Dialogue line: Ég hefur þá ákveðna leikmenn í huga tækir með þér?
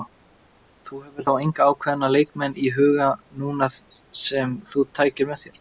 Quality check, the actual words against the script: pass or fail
fail